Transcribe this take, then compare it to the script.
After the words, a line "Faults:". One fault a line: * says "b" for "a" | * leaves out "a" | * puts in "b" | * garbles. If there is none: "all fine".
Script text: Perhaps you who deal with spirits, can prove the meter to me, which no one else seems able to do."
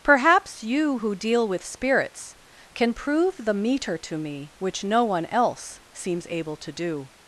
Perhaps you who deal with spirits, can prove the meter to me, which no one else seems able to do."
Faults:
all fine